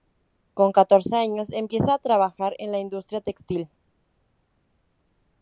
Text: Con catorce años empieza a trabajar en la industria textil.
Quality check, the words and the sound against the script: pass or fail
pass